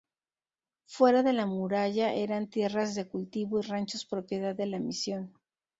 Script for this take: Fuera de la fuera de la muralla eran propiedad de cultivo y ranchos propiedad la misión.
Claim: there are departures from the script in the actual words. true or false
true